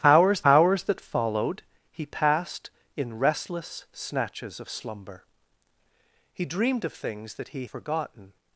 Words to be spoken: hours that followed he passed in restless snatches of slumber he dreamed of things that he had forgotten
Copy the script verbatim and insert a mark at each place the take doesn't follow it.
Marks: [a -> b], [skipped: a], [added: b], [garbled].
hours [added: hours] that followed he passed in restless snatches of slumber he dreamed of things that he [skipped: had] forgotten